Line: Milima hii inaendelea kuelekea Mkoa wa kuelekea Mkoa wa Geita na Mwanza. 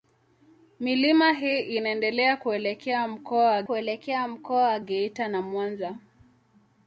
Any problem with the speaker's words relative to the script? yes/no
no